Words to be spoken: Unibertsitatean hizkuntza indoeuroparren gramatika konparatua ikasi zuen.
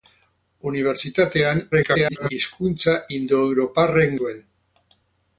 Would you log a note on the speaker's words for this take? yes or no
yes